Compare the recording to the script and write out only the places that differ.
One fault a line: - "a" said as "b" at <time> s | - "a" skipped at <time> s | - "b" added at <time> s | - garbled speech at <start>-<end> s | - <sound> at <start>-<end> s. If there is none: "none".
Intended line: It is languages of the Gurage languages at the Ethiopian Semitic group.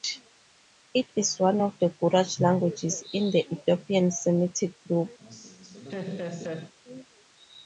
- "languages" said as "one" at 1.4 s
- "at" said as "in" at 3.1 s
- laugh at 5.2-6.7 s